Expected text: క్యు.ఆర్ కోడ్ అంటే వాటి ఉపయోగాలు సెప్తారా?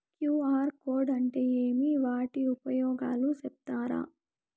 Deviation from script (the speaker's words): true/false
true